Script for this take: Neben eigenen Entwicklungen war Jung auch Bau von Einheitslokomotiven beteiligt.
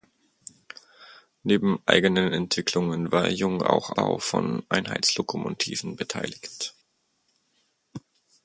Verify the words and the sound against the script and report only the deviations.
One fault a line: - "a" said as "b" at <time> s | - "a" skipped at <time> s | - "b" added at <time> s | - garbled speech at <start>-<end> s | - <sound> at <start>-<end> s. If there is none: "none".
none